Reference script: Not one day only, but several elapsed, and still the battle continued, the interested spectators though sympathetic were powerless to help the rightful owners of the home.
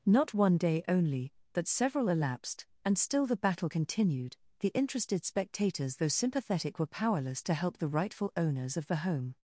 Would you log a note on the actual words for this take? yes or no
no